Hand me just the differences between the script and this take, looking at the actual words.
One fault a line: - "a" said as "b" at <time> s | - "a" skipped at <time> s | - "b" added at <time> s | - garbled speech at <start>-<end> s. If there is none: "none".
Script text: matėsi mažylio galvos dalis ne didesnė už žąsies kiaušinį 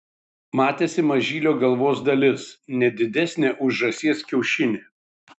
none